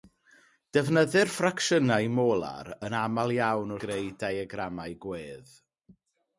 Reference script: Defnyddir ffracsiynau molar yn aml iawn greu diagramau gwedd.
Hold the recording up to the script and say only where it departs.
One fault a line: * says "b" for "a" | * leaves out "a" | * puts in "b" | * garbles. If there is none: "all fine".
all fine